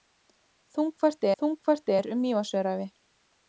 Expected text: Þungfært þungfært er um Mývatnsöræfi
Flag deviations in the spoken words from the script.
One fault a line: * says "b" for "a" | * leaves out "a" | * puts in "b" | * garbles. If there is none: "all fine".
all fine